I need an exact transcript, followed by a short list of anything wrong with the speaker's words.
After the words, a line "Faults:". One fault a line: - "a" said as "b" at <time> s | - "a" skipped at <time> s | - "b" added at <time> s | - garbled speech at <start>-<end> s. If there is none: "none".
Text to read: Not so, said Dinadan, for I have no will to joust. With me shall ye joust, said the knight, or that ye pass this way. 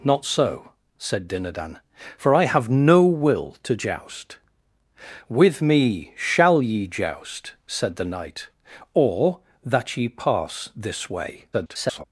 Not so, said Dinadan, for I have no will to joust. With me shall ye joust, said the knight, or that ye pass this way. [garbled]
Faults:
- garbled speech at 11.5-12.0 s